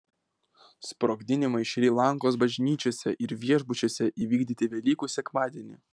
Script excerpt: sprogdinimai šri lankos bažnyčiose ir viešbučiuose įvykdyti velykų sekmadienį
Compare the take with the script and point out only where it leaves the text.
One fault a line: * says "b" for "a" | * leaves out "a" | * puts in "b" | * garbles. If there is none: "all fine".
all fine